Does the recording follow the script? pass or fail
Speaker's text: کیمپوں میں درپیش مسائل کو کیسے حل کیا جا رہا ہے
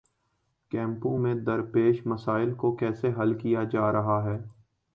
pass